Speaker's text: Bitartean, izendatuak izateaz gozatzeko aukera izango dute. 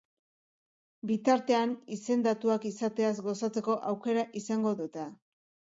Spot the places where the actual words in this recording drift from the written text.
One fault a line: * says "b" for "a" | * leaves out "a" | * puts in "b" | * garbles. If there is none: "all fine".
all fine